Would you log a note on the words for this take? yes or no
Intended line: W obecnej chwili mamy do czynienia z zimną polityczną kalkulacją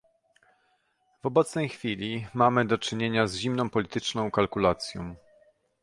no